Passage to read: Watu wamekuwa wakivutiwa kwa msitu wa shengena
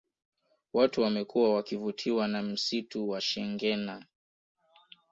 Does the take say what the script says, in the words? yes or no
no